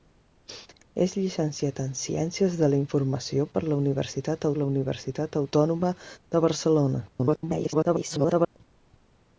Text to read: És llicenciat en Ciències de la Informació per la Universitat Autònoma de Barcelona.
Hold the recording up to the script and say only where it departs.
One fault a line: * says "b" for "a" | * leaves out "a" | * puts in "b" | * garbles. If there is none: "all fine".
* puts in "la Universitat"
* garbles